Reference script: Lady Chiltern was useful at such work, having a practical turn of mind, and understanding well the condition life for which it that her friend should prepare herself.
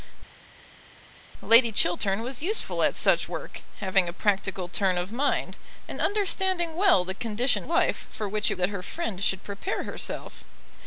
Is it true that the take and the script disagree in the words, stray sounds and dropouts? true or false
false